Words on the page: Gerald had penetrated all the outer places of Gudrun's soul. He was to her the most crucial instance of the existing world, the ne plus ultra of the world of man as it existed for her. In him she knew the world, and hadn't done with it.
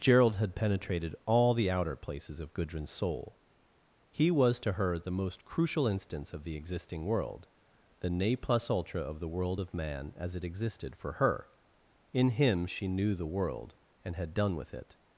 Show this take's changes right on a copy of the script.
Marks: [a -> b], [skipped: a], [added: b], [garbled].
Gerald had penetrated all the outer places of Gudrun's soul. He was to her the most crucial instance of the existing world, the ne plus ultra of the world of man as it existed for her. In him she knew the world, and [hadn't -> had] done with it.